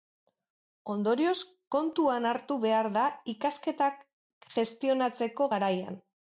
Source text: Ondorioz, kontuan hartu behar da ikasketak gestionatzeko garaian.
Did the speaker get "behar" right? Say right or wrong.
right